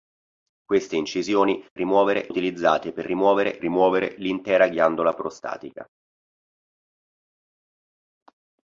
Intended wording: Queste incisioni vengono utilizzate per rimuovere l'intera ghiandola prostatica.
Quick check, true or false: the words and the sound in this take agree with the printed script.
false